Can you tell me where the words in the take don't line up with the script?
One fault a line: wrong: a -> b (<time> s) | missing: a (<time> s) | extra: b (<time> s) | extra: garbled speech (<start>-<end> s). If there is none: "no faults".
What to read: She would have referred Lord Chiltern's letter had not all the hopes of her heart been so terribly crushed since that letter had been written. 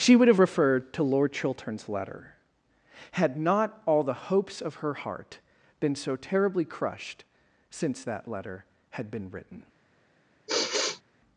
extra: to (0.9 s)